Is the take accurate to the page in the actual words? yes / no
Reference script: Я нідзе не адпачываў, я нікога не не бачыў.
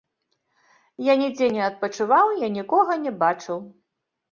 no